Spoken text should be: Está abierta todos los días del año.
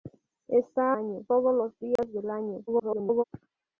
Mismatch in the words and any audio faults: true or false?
true